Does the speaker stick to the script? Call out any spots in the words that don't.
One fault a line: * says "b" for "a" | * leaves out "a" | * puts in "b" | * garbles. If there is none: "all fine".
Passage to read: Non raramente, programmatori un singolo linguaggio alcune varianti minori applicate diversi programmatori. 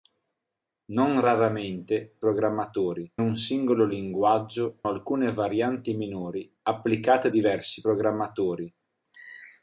all fine